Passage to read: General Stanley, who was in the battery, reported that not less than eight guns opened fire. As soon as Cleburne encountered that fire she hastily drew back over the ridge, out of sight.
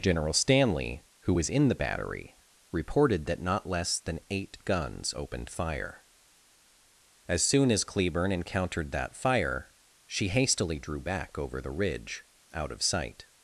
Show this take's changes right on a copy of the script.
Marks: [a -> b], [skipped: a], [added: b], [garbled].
General Stanley, who was in the battery, reported that not less than eight guns opened fire. As soon as Cleburne encountered that fire she hastily drew back over the ridge, out of sight.